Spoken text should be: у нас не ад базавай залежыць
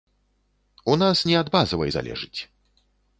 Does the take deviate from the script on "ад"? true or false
false